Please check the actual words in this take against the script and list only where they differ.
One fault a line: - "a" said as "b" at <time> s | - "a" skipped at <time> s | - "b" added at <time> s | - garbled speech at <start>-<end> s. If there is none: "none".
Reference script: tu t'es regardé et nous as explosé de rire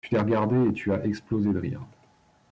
- "nous" said as "tu" at 0.7 s